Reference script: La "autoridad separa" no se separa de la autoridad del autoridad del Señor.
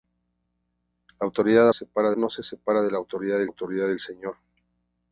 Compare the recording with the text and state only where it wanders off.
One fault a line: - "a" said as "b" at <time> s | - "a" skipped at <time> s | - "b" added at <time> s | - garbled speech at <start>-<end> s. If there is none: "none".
none